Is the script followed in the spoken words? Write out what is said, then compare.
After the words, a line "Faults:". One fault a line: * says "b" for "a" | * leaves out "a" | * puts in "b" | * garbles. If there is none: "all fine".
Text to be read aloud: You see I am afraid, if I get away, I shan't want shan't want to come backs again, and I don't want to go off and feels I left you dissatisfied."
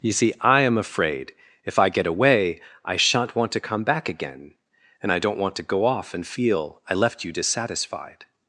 You see I am afraid, if I get away, I shan't want to come back again, and I don't want to go off and feel I left you dissatisfied."
Faults:
* leaves out "shan't want"
* says "back" for "backs"
* says "feel" for "feels"